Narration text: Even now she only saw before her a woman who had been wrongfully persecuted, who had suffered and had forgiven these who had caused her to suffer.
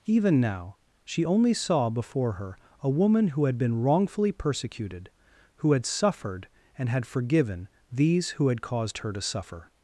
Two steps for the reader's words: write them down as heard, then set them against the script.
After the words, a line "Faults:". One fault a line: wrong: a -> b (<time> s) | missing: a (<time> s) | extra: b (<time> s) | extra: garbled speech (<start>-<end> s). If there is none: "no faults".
Even now she only saw before her a woman who had been wrongfully persecuted, who had suffered and had forgiven these who had caused her to suffer.
Faults:
no faults